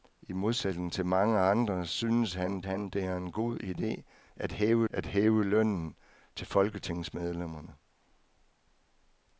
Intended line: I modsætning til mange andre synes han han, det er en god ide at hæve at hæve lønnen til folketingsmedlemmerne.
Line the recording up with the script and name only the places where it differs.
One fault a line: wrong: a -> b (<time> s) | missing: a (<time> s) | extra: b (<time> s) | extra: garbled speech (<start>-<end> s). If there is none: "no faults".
no faults